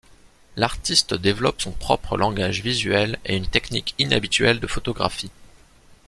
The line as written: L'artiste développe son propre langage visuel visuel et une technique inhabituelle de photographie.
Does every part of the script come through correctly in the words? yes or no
no